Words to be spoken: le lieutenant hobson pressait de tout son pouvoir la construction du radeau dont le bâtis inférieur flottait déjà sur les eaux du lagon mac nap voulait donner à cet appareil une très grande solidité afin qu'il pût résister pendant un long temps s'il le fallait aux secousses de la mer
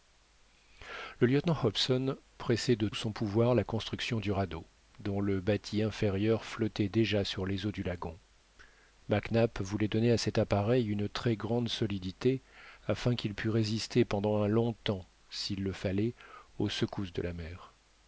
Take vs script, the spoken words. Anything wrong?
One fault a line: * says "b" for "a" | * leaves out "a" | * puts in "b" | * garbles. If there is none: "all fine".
* leaves out "tout"